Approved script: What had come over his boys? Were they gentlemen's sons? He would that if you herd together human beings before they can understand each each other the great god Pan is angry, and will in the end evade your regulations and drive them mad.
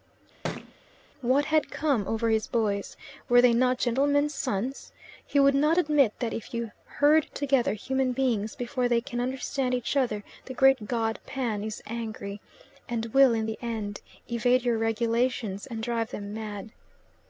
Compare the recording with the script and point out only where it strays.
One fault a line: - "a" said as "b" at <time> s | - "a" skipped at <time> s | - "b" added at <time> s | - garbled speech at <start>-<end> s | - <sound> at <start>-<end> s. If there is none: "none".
- thud at 0.4-0.7 s
- "not" added at 3.5 s
- "not admit" added at 5.5 s
- "each" skipped at 9.9 s